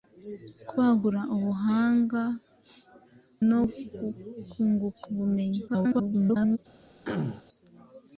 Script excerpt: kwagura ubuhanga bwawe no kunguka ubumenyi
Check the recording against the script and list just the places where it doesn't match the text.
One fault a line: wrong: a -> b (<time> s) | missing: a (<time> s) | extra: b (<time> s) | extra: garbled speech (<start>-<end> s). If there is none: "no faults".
missing: bwawe (2.2 s)
extra: garbled speech (5.7-6.6 s)